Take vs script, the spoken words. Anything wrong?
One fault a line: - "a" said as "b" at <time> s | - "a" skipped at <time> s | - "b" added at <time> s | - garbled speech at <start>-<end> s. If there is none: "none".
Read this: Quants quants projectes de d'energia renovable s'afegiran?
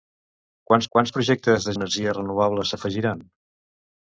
none